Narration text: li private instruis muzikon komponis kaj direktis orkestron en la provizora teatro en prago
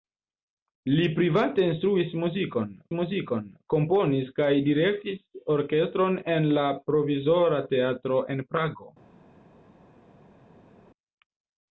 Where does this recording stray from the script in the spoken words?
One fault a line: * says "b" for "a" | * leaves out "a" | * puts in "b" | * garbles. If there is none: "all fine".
* puts in "muzikon"